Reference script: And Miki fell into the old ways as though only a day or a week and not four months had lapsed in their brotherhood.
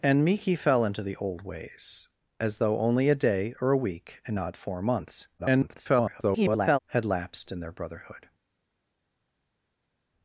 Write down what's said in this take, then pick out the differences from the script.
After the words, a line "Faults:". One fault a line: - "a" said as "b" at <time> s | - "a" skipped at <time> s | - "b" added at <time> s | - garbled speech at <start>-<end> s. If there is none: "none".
And Miki fell into the old ways as though only a day or a week and not four months [garbled] had lapsed in their brotherhood.
Faults:
- garbled speech at 5.4-6.8 s